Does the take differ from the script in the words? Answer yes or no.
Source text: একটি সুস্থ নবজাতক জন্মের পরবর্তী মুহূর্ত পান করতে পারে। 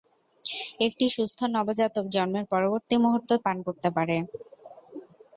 no